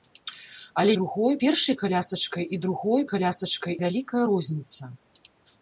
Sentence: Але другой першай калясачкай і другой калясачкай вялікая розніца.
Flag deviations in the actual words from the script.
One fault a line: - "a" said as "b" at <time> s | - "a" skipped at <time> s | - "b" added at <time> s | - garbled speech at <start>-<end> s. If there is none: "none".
none